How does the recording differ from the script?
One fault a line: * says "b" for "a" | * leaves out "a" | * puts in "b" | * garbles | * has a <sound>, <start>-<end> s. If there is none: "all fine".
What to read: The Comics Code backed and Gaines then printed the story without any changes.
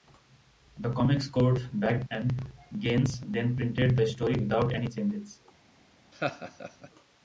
* has a laugh, 6.1-6.9 s